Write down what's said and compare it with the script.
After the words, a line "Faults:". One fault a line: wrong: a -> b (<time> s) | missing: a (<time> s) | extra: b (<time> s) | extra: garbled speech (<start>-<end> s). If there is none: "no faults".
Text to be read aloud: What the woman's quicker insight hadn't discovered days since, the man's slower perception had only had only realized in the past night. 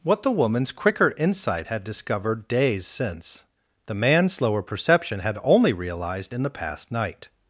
What the woman's quicker insight had discovered days since, the man's slower perception had only realized in the past night.
Faults:
wrong: hadn't -> had (1.7 s)
missing: had only (5.7 s)